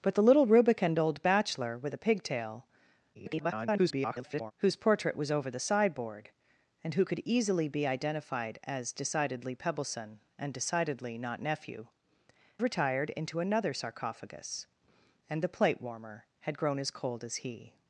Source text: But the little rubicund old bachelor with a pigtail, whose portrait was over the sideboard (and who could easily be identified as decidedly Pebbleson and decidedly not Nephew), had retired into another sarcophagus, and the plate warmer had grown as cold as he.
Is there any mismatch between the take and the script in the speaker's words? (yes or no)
yes